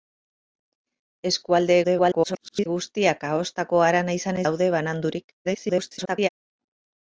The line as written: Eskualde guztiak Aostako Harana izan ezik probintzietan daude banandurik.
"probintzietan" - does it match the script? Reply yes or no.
no